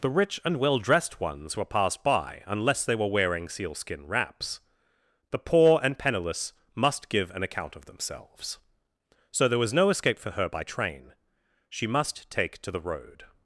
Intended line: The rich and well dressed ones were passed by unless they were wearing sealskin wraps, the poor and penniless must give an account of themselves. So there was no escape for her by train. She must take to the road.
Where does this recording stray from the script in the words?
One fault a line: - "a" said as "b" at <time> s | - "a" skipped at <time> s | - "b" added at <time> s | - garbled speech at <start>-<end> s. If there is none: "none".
none